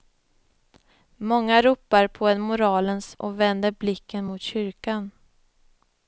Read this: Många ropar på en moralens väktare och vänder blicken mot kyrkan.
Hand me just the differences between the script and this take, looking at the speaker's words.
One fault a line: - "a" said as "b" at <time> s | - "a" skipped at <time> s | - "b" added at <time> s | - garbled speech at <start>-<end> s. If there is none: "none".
- "väktare" skipped at 3.2 s